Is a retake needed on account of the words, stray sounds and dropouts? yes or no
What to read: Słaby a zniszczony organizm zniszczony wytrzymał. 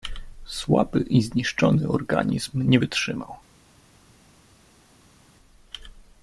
yes